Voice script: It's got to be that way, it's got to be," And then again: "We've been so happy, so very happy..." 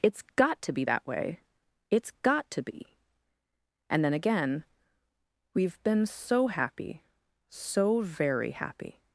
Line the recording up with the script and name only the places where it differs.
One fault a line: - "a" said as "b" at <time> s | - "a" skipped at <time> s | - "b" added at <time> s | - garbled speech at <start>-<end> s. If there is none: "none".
none